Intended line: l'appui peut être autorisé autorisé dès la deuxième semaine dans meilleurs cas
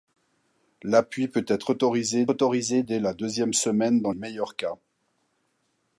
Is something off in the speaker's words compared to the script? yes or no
no